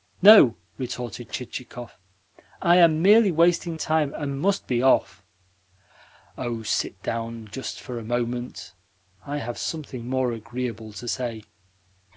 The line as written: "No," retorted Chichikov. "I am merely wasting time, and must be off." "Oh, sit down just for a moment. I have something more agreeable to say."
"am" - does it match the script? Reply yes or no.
yes